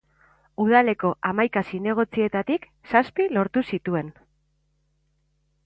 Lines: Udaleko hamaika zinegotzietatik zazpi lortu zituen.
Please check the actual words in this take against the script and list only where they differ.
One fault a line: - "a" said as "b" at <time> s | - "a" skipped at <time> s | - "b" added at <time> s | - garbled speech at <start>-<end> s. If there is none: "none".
none